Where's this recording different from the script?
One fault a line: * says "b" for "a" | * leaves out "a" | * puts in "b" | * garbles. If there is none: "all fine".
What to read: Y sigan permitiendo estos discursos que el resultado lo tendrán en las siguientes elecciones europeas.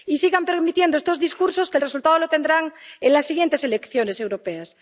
all fine